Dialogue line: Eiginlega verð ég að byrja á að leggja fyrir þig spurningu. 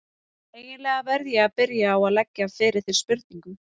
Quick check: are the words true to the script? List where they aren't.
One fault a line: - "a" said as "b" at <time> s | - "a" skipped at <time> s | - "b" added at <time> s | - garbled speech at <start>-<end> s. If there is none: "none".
none